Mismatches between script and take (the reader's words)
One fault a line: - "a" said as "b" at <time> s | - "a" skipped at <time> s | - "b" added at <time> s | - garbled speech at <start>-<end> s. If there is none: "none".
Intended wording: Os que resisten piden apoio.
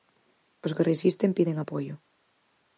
none